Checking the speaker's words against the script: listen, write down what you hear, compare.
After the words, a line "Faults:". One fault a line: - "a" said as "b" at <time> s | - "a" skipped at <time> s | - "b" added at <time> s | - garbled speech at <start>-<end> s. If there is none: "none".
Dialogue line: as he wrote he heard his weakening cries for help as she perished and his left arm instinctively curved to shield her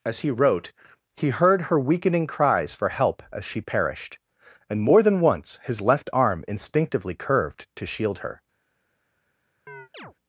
as he wrote he heard her weakening cries for help as she perished and more than once his left arm instinctively curved to shield her
Faults:
- "his" said as "her" at 1.6 s
- "more than once" added at 4.8 s